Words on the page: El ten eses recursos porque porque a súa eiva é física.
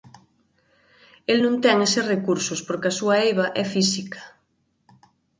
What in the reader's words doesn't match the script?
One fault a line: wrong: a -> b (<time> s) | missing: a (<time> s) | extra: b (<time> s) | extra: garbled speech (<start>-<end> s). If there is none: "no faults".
extra: non (1.4 s)
missing: porque (2.9 s)